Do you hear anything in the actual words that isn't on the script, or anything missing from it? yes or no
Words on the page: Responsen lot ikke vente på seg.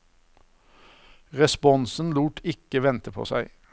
no